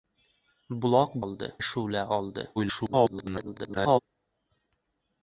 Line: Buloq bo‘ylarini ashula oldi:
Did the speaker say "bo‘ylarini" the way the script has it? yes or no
no